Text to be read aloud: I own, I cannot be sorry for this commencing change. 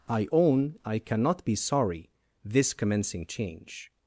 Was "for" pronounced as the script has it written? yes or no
no